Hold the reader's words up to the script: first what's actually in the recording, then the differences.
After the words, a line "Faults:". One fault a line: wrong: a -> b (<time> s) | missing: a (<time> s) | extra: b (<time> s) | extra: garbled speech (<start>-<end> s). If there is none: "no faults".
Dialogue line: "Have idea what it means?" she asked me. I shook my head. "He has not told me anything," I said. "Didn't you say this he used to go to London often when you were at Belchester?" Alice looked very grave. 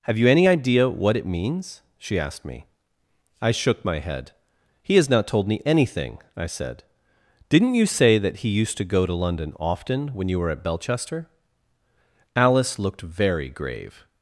"Have you any idea what it means?" she asked me. I shook my head. "He has not told me anything," I said. "Didn't you say that he used to go to London often when you were at Belchester?" Alice looked very grave.
Faults:
extra: you any (0.2 s)
wrong: this -> that (8.2 s)